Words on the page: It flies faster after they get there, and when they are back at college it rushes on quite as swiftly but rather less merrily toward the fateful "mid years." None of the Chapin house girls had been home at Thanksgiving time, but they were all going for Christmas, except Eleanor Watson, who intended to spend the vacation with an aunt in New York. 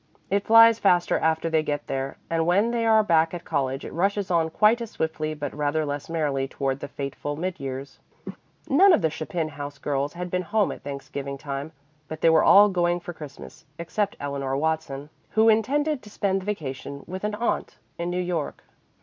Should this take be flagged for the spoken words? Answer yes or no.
no